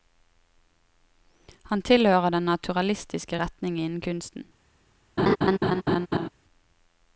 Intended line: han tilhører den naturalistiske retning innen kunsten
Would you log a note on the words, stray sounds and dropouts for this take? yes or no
yes